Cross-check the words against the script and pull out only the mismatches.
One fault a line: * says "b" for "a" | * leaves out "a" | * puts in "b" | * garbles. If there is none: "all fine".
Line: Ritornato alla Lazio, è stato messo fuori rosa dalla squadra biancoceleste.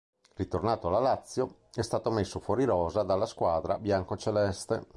all fine